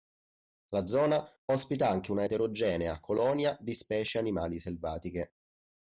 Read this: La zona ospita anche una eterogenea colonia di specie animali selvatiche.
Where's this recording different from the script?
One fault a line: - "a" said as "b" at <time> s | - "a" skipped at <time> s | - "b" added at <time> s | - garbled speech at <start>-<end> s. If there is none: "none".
none